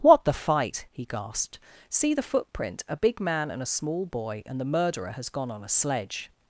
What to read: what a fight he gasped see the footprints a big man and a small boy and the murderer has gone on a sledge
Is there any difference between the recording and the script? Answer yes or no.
yes